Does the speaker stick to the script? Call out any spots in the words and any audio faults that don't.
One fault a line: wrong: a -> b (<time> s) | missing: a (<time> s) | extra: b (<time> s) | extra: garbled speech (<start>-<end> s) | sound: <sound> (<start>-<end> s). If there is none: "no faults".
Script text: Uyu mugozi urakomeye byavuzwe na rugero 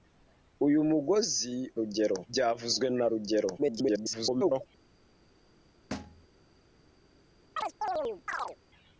wrong: urakomeye -> rugero (1.8 s)
extra: garbled speech (3.6-4.7 s)
sound: thud (5.9-6.3 s)
sound: chirp (7.6-8.6 s)